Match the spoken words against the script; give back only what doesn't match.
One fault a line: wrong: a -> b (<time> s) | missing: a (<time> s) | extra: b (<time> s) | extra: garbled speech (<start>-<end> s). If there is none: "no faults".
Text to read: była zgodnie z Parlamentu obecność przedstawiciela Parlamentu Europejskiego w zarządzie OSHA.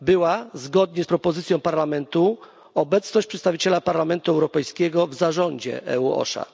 extra: propozycją (1.1 s)
extra: EU (5.9 s)